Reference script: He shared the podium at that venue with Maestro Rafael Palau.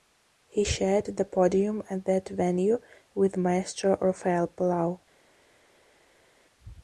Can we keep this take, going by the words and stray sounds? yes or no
yes